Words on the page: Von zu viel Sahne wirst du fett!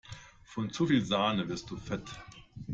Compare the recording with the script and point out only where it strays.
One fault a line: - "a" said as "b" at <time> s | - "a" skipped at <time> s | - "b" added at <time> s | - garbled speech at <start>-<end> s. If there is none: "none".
none